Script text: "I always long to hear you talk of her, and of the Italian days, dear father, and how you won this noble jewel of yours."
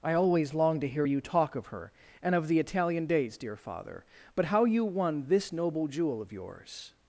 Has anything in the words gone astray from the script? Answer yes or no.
yes